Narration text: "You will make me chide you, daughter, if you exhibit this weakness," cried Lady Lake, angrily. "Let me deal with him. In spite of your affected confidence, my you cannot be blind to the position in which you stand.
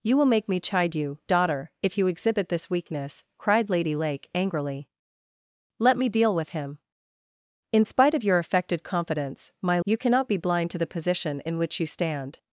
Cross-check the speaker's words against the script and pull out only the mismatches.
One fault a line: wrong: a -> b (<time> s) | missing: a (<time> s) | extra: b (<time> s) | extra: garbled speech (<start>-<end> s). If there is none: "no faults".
no faults